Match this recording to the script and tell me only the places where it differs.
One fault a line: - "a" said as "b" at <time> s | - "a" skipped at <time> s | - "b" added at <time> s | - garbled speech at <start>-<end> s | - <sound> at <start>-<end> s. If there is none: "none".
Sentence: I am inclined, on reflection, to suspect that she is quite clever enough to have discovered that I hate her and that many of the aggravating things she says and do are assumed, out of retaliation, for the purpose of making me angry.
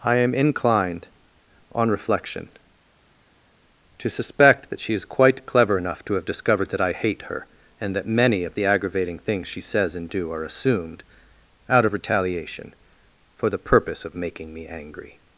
none